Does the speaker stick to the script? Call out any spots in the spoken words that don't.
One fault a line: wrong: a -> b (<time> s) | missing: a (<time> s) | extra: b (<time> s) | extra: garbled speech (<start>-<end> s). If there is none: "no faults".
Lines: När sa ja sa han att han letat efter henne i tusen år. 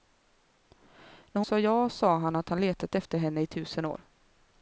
no faults